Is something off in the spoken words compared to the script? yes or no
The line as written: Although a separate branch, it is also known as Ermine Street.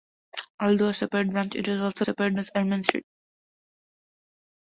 yes